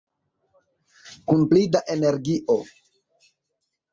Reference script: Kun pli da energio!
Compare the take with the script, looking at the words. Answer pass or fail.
pass